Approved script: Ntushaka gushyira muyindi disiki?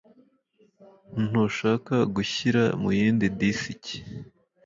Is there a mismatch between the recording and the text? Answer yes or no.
no